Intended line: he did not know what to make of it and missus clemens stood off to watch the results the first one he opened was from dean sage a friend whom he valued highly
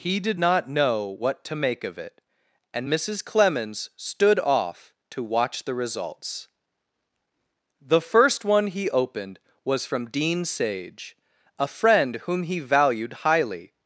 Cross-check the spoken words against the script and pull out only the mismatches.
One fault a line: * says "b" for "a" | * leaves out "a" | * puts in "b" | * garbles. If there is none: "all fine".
all fine